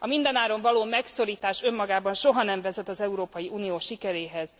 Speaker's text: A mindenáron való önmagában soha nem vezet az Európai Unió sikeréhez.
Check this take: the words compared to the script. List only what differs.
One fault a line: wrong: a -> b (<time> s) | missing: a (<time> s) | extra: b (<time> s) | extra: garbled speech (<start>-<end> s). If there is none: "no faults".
extra: megszorítás (0.8 s)